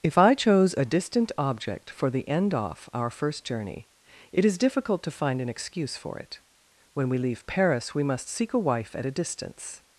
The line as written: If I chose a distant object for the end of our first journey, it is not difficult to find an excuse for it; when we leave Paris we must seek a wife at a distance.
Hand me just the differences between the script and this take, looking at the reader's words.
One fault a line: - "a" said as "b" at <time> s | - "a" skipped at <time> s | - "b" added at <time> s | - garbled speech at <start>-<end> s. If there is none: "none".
- "of" said as "off" at 2.5 s
- "not" skipped at 4.6 s